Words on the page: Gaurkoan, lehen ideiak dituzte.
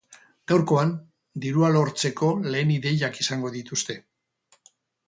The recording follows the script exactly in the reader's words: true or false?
false